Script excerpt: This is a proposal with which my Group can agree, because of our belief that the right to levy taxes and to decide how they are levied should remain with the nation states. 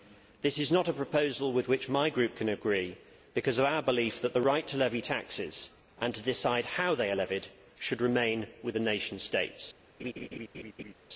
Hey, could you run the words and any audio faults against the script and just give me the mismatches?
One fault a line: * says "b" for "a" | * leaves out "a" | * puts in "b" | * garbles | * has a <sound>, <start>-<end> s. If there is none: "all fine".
* puts in "not"
* has a laugh, 10.0-10.9 s